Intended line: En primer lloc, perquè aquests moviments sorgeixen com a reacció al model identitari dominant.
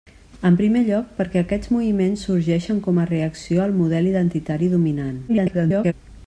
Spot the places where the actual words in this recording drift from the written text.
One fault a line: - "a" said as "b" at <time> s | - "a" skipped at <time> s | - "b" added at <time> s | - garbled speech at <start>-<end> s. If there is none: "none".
- garbled speech at 5.3-5.9 s